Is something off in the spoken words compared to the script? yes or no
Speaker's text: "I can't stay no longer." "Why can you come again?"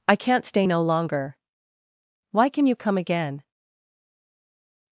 no